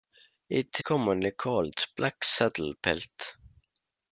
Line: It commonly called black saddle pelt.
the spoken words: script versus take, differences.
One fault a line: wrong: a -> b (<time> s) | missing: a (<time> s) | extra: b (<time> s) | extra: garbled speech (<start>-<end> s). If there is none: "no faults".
no faults